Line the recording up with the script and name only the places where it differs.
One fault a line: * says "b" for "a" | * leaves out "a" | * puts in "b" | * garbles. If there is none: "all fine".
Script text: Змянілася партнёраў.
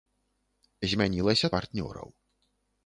all fine